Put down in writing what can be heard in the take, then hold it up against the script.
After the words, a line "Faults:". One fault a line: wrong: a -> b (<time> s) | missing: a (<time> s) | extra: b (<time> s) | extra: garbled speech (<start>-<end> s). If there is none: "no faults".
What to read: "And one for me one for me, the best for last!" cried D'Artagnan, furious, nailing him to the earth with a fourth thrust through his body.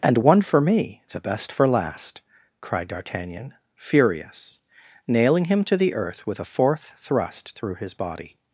"And one for me, the best for last!" cried D'Artagnan, furious, nailing him to the earth with a fourth thrust through his body.
Faults:
missing: one for me (1.0 s)